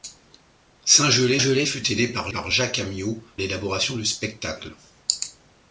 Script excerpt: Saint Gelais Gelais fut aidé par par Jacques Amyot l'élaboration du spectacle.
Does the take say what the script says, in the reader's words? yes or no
yes